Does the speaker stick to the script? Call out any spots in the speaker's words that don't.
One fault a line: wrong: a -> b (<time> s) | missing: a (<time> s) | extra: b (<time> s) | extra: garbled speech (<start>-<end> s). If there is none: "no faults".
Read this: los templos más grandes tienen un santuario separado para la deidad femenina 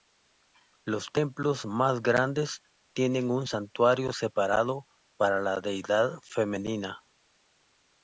no faults